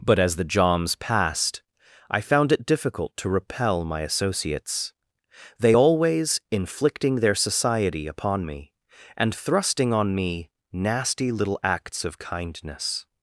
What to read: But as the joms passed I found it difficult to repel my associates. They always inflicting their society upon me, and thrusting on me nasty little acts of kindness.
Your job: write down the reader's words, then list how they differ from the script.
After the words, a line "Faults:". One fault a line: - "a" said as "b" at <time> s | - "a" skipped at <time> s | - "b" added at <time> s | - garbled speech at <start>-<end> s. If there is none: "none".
But as the joms passed I found it difficult to repel my associates. They always inflicting their society upon me, and thrusting on me nasty little acts of kindness.
Faults:
none